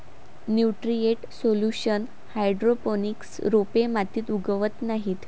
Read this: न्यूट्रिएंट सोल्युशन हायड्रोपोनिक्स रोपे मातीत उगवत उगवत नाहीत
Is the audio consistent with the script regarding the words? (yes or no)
no